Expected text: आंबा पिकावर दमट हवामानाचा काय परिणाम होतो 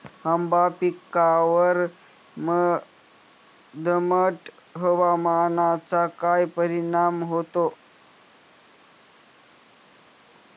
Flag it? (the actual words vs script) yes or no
no